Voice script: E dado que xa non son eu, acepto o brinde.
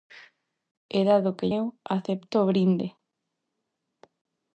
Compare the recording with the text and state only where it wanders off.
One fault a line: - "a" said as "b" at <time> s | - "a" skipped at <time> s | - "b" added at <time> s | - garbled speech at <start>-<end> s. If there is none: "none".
- "xa non son" skipped at 1.5 s